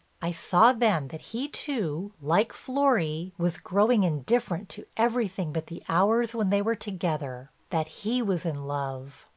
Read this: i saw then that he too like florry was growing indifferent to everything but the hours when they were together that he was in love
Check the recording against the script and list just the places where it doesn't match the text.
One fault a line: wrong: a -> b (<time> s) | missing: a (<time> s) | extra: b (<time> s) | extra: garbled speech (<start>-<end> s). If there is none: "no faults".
no faults